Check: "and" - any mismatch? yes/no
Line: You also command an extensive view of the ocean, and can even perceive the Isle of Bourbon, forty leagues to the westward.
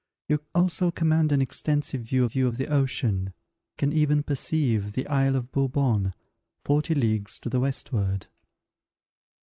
yes